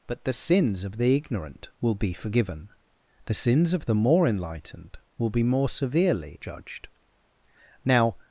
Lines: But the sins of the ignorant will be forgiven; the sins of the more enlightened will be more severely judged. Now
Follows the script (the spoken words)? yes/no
yes